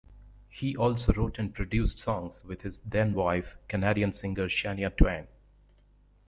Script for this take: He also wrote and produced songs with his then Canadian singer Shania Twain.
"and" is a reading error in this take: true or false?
false